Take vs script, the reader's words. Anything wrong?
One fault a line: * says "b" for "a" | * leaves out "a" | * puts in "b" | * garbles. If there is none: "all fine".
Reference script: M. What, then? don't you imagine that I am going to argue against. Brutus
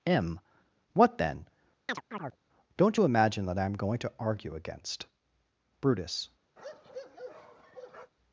all fine